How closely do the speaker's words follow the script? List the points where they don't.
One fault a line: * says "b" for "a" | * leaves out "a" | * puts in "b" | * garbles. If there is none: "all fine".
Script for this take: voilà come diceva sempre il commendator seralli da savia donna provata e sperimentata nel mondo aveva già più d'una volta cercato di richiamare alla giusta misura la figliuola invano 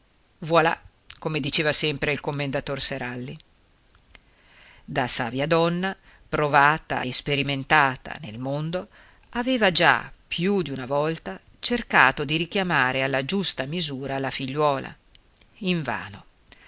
all fine